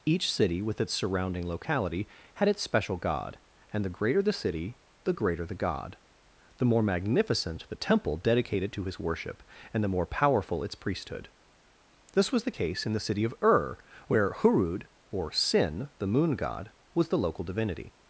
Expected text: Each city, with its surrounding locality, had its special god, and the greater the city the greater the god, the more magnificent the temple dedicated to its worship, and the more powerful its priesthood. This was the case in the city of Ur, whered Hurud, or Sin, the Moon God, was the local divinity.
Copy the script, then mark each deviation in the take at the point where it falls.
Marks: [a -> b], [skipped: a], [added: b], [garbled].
Each city, with its surrounding locality, had its special god, and the greater the city the greater the god, the more magnificent the temple dedicated to [its -> his] worship, and the more powerful its priesthood. This was the case in the city of Ur, [whered -> where] Hurud, or Sin, the Moon God, was the local divinity.